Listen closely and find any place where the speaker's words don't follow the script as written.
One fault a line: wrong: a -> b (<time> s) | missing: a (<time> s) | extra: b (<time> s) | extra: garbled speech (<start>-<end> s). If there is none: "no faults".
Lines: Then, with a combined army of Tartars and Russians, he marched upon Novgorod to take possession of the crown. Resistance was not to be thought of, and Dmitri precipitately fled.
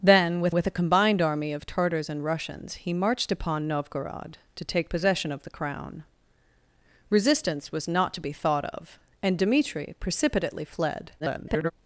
extra: with (0.5 s)
extra: garbled speech (11.2-11.7 s)